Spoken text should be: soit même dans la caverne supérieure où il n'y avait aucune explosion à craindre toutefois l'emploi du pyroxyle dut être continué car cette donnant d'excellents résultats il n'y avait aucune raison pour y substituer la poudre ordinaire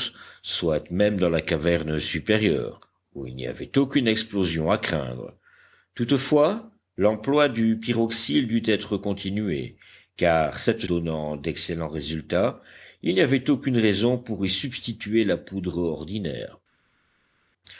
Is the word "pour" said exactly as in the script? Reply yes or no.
yes